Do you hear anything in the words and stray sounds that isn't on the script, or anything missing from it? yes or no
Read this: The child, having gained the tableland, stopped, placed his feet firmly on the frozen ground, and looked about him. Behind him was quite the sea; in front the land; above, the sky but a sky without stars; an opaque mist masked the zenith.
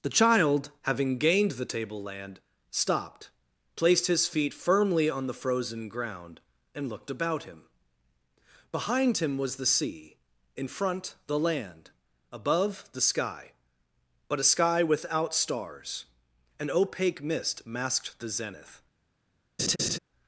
yes